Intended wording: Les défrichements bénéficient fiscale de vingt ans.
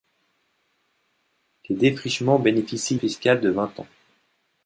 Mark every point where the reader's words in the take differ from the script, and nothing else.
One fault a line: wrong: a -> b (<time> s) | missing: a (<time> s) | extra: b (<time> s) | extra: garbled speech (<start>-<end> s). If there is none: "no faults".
no faults